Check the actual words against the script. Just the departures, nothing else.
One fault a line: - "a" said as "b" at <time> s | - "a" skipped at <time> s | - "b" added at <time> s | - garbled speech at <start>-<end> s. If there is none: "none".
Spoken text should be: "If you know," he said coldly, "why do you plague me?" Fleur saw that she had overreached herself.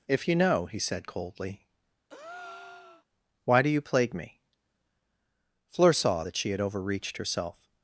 none